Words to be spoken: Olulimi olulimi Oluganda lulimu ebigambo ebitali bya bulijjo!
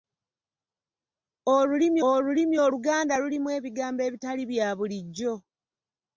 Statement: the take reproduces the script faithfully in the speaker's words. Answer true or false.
true